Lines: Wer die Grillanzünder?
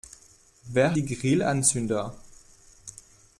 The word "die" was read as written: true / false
true